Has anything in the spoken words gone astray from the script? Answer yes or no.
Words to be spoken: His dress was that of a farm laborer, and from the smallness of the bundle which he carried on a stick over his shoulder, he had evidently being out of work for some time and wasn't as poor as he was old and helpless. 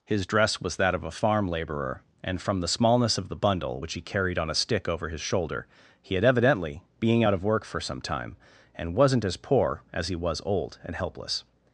no